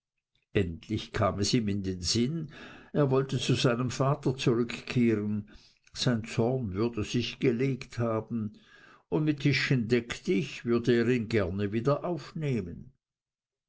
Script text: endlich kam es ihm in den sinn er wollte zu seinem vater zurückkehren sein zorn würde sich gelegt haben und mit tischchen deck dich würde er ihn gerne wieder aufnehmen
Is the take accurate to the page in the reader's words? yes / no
yes